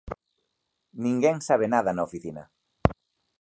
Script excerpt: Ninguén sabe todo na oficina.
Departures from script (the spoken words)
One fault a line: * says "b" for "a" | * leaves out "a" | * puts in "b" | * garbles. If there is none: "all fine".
* says "nada" for "todo"